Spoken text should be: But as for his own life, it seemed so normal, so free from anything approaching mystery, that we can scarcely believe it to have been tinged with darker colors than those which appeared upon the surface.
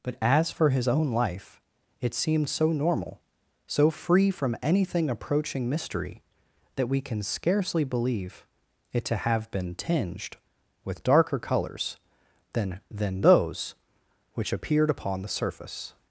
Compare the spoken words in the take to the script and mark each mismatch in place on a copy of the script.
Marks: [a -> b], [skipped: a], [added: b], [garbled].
But as for his own life, it seemed so normal, so free from anything approaching mystery, that we can scarcely believe it to have been tinged with darker colors than [added: than] those which appeared upon the surface.